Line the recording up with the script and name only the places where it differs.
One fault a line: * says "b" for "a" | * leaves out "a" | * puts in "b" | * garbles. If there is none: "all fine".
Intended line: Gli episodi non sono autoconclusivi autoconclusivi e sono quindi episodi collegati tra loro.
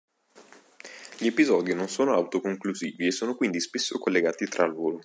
* leaves out "autoconclusivi"
* says "spesso" for "episodi"